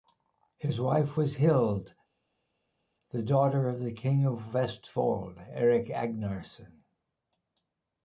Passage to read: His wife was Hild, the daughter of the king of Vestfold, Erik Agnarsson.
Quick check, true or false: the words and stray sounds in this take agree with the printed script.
true